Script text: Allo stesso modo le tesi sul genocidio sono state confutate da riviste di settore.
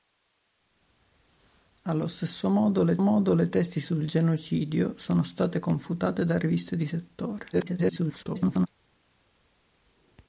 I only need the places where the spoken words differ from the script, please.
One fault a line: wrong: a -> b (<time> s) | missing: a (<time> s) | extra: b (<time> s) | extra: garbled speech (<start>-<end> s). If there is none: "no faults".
extra: modo le (3.0 s)
extra: garbled speech (7.5-8.7 s)